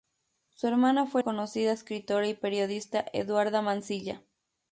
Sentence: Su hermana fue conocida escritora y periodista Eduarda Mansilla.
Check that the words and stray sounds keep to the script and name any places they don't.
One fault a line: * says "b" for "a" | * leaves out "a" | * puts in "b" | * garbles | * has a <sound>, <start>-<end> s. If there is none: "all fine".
all fine